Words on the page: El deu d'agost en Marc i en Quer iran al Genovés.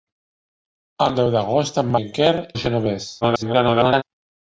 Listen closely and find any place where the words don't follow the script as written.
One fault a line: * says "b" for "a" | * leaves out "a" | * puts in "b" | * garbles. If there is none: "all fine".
* leaves out "Marc"
* leaves out "iran"
* garbles